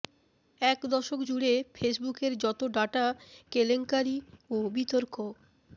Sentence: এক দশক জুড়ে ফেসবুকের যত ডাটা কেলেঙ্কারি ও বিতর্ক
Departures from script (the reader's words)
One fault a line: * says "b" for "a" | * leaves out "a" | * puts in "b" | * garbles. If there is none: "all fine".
all fine